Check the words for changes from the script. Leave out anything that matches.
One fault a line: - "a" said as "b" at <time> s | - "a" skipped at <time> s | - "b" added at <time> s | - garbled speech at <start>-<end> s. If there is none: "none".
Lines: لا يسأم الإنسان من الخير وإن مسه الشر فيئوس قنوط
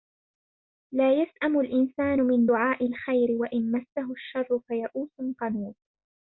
- "دعاء" added at 2.4 s